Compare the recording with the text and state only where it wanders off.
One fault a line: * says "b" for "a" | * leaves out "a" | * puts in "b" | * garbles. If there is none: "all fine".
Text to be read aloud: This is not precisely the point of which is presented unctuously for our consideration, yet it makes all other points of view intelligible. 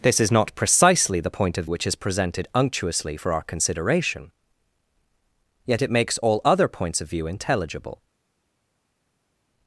all fine